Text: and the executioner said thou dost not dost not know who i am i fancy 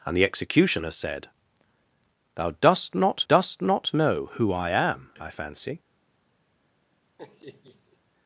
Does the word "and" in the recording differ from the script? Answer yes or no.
no